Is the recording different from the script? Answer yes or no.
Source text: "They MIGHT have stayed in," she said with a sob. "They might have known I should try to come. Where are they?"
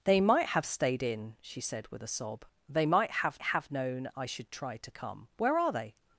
yes